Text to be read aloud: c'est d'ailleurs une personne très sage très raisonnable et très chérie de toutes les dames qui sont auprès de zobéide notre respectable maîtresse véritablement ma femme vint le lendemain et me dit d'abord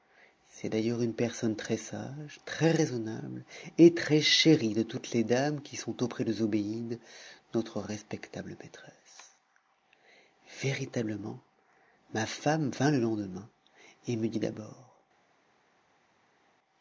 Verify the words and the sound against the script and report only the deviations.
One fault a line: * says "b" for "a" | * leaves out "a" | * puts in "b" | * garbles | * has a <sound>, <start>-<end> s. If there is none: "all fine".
all fine